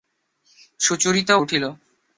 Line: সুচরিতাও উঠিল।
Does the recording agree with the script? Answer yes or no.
yes